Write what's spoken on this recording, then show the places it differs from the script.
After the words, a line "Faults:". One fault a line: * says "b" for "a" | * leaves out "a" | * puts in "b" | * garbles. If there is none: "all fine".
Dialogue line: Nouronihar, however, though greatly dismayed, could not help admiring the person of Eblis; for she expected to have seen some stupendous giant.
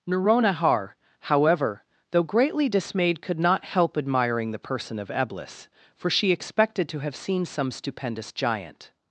Nouronihar, however, though greatly dismayed, could not help admiring the person of Eblis; for she expected to have seen some stupendous giant.
Faults:
all fine